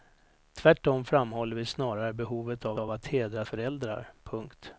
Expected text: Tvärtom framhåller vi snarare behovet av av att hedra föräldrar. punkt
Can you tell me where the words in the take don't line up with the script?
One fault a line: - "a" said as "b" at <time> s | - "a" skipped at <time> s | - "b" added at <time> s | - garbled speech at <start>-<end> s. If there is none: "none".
none